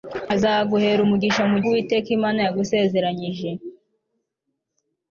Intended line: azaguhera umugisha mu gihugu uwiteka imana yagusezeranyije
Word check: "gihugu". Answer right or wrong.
wrong